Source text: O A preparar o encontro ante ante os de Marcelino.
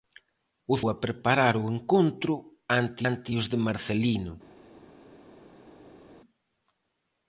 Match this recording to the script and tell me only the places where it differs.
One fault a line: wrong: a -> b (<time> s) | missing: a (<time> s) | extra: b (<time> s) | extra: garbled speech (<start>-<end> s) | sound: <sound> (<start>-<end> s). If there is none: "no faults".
no faults